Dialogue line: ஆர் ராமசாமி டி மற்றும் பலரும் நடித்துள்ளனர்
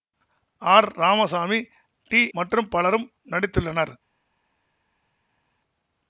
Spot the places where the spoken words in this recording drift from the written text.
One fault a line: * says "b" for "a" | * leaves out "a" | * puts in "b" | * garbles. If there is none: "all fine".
all fine